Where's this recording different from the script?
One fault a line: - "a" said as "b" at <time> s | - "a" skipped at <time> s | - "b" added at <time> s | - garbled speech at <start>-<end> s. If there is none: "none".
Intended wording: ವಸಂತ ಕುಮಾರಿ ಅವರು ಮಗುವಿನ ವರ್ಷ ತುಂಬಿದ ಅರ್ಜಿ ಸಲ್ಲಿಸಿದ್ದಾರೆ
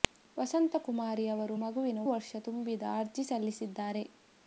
none